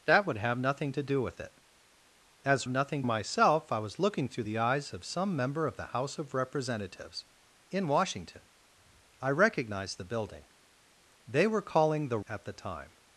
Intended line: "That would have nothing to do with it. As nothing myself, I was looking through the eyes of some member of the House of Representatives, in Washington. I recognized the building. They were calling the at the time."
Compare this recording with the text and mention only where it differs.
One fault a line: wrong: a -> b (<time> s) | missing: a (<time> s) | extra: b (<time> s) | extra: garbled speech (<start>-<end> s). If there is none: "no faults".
no faults